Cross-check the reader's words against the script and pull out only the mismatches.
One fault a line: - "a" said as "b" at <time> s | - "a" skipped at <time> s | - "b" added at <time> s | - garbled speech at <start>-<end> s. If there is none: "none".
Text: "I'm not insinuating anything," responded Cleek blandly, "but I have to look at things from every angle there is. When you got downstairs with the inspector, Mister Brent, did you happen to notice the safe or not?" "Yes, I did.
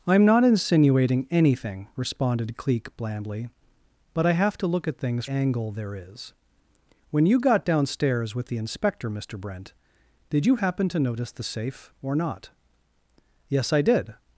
- "from every" skipped at 5.3 s